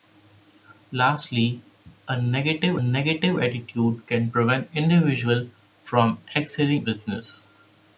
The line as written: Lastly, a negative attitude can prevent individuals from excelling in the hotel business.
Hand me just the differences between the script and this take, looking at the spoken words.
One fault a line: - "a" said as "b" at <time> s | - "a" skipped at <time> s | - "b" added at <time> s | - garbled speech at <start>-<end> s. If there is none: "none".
- "negative" added at 2.8 s
- "in the hotel" skipped at 6.9 s